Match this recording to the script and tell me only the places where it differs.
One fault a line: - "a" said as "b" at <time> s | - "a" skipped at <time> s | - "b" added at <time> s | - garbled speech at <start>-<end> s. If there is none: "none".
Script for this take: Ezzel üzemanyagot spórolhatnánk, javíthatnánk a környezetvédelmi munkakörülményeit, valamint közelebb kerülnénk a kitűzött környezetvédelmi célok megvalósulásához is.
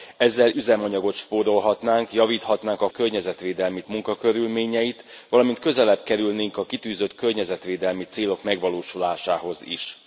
none